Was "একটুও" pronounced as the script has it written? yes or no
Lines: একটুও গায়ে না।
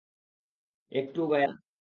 yes